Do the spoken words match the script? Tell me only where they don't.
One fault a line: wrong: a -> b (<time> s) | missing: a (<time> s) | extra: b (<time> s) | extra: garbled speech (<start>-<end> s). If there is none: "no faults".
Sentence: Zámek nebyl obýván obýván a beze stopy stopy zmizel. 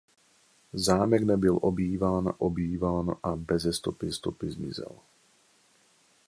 no faults